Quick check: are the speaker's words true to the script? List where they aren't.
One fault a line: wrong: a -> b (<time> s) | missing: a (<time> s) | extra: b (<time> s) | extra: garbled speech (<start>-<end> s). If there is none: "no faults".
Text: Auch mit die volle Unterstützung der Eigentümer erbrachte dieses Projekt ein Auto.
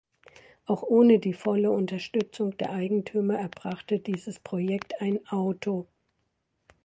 wrong: mit -> ohne (0.8 s)